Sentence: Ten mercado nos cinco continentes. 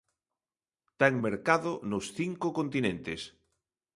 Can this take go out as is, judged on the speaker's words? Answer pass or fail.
pass